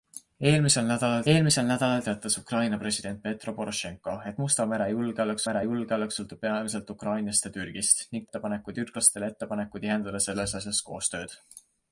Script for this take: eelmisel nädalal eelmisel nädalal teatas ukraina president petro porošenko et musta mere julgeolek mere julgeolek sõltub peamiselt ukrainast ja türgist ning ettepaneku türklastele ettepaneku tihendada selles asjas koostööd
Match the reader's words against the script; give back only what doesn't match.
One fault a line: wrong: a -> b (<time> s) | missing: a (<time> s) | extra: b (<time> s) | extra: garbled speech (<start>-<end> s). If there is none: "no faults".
no faults